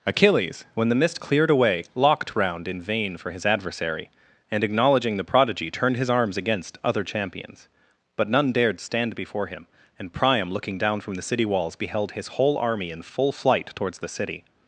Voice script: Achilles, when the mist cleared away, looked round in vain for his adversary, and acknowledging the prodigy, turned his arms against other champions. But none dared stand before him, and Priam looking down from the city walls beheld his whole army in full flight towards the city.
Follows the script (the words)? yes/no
no